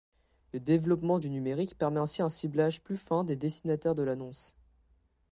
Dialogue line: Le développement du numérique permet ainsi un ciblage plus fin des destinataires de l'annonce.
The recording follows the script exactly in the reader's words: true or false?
true